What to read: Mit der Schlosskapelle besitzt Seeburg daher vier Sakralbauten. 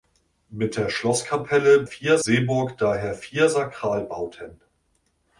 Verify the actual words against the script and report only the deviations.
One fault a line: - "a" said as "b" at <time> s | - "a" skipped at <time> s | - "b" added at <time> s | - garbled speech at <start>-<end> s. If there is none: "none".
- "besitzt" said as "vier" at 1.8 s